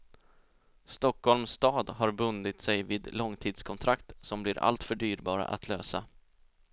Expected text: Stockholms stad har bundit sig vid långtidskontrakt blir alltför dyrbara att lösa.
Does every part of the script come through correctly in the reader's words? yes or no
no